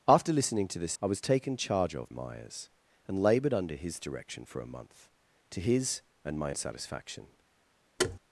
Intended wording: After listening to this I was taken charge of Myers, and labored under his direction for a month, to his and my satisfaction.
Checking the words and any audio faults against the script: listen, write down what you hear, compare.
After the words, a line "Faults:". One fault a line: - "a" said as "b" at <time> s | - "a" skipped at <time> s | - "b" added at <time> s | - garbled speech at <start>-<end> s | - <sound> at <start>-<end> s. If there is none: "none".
After listening to this I was taken charge of Myers, and labored under his direction for a month, to his and my satisfaction.
Faults:
- thud at 8.0-8.2 s